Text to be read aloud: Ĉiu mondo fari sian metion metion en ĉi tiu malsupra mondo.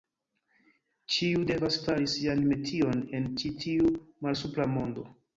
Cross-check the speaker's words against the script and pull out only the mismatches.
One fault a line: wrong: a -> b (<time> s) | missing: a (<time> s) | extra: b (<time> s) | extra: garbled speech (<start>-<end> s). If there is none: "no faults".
wrong: mondo -> devas (1.5 s)
missing: metion (3.0 s)